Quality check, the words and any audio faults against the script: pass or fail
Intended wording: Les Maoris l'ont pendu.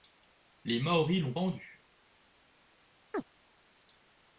fail